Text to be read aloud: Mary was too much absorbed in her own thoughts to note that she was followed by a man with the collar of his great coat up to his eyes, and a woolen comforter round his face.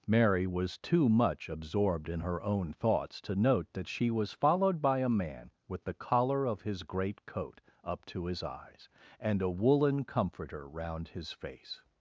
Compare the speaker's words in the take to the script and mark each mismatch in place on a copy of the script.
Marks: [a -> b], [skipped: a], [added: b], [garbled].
Mary was too much absorbed in her own thoughts to note that she was followed by a man with the collar of his great coat up to his eyes, and a woolen comforter round his face.